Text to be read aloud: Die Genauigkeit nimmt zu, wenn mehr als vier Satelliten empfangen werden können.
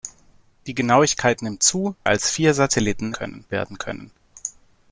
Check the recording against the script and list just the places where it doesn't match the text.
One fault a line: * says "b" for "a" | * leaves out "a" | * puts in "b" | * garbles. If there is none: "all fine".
* leaves out "wenn mehr"
* says "können" for "empfangen"